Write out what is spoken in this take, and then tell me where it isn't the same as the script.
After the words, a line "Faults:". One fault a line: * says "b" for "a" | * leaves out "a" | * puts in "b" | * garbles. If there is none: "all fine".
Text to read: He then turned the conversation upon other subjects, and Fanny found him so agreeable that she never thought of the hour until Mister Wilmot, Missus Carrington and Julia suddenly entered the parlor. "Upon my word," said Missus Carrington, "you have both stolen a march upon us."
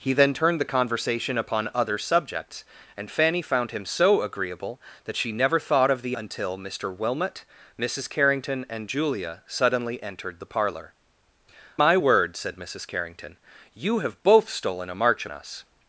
He then turned the conversation upon other subjects, and Fanny found him so agreeable that she never thought of the until Mister Wilmot, Missus Carrington and Julia suddenly entered the parlor. "My word," said Missus Carrington, "you have both stolen a march us."
Faults:
* leaves out "hour"
* leaves out "Upon"
* leaves out "upon"